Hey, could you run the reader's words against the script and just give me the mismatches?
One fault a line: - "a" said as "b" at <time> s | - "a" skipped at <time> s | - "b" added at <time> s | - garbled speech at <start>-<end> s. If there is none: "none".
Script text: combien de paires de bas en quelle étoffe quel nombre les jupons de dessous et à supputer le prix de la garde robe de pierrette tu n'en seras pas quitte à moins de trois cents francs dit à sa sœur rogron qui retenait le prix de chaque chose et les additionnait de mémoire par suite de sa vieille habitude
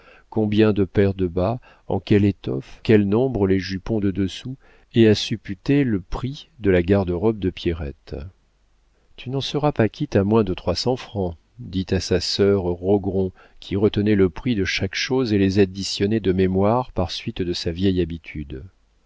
none